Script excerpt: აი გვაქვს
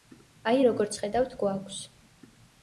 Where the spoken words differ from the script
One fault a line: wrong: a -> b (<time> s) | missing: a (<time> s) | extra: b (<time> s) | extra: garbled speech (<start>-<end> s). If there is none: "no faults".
extra: როგორც ხედავთ (0.7 s)